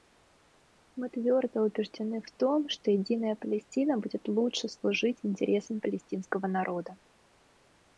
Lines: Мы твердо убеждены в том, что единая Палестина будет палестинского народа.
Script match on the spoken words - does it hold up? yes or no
no